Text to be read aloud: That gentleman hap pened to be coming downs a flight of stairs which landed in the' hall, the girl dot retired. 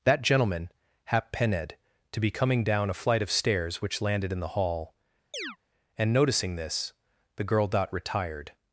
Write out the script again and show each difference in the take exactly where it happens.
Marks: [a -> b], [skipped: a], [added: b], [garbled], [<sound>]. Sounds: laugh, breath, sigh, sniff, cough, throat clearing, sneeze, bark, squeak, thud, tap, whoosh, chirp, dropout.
That gentleman hap pened to be coming [downs -> down] a flight of stairs which landed in the' hall, [chirp] [added: and noticing this] the girl dot retired.